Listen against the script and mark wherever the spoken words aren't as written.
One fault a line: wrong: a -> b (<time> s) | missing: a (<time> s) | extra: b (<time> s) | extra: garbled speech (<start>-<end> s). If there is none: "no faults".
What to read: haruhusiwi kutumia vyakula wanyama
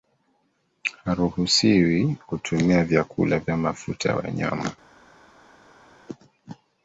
extra: vya mafuta ya (3.4 s)